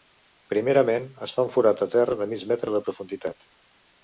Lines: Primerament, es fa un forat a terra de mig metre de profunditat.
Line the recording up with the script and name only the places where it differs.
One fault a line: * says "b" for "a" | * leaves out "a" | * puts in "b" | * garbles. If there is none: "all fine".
all fine